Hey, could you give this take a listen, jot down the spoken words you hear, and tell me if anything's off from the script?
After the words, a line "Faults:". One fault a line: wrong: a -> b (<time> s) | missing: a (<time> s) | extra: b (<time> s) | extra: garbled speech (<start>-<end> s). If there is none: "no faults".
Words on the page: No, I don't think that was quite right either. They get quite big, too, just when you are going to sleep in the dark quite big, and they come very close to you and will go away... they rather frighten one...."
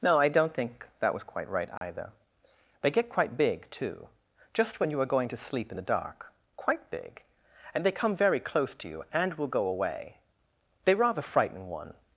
No, I don't think that was quite right either. They get quite big, too, just when you are going to sleep in the dark quite big, and they come very close to you and will go away... they rather frighten one...."
Faults:
no faults